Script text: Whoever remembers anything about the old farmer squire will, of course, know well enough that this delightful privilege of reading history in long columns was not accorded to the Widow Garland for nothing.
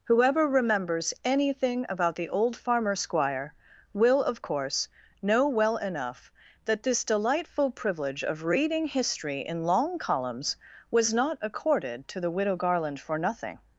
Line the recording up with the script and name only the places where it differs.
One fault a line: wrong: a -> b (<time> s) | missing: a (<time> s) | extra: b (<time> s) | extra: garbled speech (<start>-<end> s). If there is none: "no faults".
no faults